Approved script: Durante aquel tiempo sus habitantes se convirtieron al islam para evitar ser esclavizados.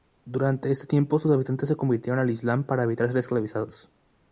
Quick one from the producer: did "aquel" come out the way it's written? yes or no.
no